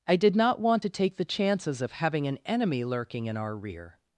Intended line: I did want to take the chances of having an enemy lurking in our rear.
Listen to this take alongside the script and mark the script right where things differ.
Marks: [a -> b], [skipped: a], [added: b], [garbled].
I did [added: not] want to take the chances of having an enemy lurking in our rear.